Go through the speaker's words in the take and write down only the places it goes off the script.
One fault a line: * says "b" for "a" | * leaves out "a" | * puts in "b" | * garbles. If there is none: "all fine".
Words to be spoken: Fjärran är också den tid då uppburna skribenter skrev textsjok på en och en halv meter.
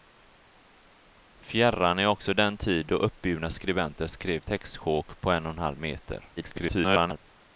* garbles